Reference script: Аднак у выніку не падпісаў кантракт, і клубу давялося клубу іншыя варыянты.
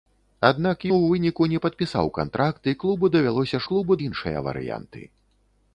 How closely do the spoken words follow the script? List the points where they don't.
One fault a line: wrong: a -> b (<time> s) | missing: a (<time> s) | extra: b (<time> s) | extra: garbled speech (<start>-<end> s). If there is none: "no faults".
no faults